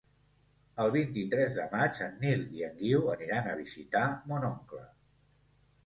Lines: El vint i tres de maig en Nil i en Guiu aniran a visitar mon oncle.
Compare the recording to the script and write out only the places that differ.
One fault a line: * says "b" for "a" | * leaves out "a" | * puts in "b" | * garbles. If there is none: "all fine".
all fine